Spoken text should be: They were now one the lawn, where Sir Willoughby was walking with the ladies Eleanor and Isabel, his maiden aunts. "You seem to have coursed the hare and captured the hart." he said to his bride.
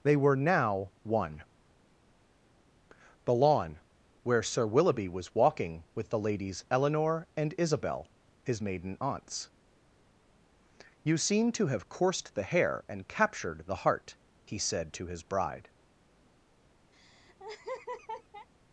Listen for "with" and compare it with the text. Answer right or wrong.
right